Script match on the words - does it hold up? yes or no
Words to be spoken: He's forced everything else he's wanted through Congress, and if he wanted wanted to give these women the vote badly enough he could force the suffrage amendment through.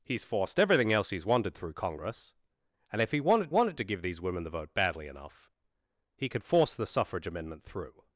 yes